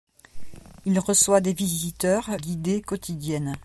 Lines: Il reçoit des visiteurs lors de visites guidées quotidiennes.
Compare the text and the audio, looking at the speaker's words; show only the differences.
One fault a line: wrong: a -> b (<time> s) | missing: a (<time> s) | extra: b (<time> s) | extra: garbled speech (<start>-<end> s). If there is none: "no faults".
missing: lors de visites (2.3 s)